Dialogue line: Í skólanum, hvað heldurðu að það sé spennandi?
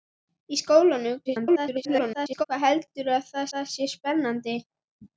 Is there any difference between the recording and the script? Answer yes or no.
yes